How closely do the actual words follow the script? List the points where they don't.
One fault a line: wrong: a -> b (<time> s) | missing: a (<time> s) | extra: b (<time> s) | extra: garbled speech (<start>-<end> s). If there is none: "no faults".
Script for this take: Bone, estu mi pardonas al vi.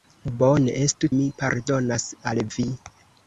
no faults